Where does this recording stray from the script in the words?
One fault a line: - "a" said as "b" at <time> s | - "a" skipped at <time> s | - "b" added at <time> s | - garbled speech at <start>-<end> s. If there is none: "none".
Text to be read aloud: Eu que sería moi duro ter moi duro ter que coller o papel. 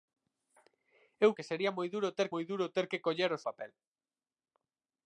none